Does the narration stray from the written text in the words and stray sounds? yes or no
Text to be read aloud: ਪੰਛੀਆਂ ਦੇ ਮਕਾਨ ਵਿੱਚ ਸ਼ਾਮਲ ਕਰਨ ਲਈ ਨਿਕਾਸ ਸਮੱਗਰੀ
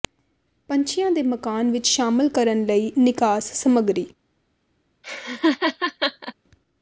yes